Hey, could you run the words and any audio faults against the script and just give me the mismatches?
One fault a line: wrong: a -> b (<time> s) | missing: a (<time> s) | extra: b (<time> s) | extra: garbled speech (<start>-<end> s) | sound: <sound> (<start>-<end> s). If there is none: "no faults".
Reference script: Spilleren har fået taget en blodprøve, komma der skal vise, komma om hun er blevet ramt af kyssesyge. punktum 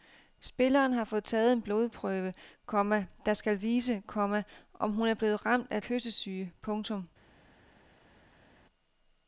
no faults